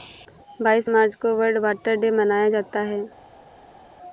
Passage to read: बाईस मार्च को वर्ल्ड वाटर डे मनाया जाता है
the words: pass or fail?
pass